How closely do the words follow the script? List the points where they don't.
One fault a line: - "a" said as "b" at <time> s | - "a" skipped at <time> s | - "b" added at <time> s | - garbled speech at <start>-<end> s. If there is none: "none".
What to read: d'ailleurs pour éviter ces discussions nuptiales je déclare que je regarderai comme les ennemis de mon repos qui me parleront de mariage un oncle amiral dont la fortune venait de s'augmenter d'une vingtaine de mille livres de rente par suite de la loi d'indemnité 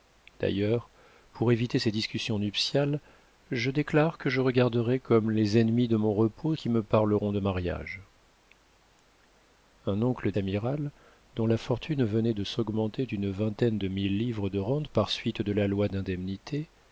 none